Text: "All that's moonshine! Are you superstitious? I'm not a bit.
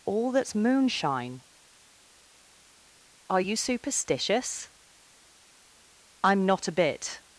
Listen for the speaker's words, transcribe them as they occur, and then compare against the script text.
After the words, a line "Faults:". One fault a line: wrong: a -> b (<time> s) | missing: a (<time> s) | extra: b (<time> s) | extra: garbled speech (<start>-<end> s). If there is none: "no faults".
"All that's moonshine! Are you superstitious? I'm not a bit.
Faults:
no faults